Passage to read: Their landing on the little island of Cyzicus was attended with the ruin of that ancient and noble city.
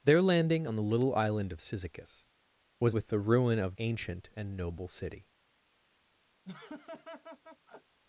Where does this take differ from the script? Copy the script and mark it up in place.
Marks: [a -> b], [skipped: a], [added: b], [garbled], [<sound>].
Their landing on the little island of Cyzicus was [skipped: attended] with the ruin of [skipped: that] ancient and noble city. [laugh]